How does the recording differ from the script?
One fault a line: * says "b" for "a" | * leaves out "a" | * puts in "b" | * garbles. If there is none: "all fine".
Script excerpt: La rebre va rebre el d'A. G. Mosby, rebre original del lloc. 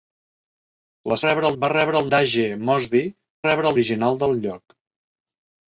all fine